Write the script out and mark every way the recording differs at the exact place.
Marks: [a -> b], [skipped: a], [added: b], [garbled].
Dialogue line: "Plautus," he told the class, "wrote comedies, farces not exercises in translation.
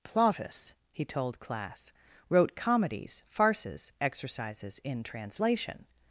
"Plautus," he told [skipped: the] class, "wrote comedies, farces [skipped: not] exercises in translation.